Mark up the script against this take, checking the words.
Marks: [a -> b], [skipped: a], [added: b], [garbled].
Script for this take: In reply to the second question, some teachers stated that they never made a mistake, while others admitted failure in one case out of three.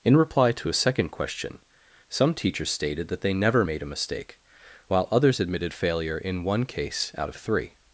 In reply to [the -> a] second question, some teachers stated that they never made a mistake, while others admitted failure in one case out of three.